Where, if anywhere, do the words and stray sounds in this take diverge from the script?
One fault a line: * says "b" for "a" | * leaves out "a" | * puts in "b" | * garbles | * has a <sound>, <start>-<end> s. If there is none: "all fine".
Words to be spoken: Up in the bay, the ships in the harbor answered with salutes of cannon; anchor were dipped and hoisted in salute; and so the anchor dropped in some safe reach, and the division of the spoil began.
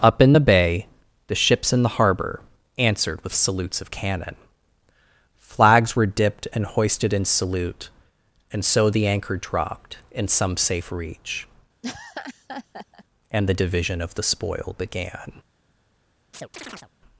* says "flags" for "anchor"
* has a laugh, 11.8-13.0 s
* has a chirp, 16.3-16.9 s